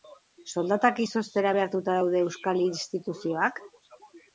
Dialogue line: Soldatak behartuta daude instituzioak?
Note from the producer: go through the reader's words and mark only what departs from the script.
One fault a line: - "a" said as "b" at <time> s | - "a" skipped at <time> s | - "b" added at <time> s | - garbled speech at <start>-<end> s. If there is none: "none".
- "izoztera" added at 1.0 s
- "euskal" added at 2.3 s